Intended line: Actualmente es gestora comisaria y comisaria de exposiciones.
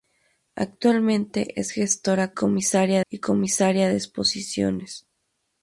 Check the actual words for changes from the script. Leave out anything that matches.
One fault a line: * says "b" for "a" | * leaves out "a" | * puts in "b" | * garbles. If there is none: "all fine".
all fine